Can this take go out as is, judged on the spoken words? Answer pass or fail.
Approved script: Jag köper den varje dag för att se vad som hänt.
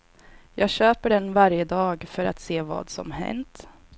pass